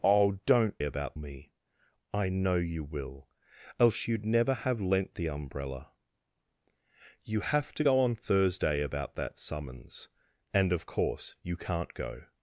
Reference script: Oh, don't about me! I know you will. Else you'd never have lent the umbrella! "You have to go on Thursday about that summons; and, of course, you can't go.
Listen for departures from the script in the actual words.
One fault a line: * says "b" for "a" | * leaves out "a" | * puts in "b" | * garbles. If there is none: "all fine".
all fine